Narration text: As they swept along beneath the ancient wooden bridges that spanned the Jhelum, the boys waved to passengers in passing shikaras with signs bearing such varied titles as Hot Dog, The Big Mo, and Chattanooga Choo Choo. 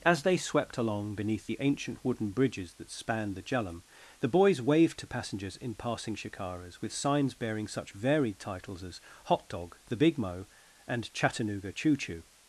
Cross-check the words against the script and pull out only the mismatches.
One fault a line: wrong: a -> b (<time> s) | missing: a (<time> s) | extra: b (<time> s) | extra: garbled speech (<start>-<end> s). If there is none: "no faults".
no faults